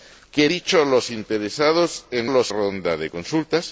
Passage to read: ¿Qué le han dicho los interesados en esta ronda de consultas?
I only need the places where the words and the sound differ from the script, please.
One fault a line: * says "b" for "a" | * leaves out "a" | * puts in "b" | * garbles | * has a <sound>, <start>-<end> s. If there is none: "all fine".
* leaves out "le han"
* says "los" for "esta"